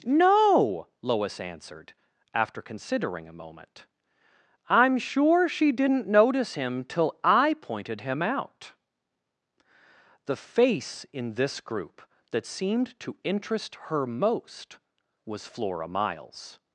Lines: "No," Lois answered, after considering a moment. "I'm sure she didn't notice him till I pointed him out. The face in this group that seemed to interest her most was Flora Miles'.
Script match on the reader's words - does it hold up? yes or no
yes